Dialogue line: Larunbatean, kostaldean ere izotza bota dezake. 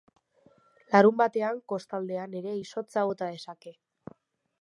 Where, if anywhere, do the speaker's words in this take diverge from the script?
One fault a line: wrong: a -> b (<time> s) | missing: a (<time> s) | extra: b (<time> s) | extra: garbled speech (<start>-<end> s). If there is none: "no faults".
no faults